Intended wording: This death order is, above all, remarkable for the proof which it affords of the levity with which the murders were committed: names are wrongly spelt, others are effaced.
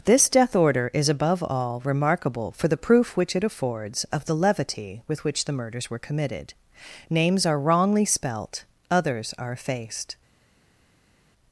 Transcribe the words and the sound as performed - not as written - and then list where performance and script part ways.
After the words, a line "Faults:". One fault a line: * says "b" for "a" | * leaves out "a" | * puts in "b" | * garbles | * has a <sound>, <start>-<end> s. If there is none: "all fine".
This death order is, above all, remarkable for the proof which it affords of the levity with which the murders were committed: names are wrongly spelt, others are effaced.
Faults:
all fine